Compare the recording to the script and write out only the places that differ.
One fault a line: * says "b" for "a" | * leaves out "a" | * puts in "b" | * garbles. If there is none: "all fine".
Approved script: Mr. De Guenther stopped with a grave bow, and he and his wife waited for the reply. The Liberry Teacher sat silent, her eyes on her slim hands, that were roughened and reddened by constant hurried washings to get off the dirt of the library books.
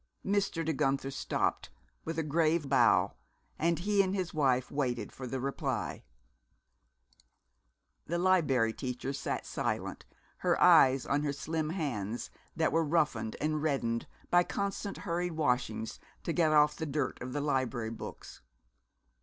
all fine